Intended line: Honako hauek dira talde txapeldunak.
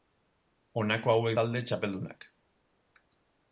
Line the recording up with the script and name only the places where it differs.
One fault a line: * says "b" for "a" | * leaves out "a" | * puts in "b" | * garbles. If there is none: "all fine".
* leaves out "dira"